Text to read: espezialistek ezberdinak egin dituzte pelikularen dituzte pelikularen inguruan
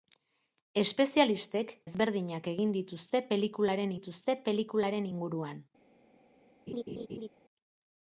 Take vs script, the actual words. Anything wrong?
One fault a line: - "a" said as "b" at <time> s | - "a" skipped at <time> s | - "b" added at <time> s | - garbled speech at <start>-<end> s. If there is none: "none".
none